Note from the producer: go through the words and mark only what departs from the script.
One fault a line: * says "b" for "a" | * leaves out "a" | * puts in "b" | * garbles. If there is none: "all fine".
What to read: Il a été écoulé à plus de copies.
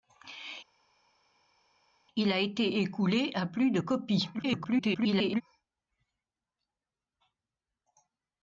* garbles